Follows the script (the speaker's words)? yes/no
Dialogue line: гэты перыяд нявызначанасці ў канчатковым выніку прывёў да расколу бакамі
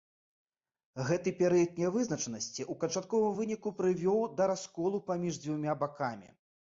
no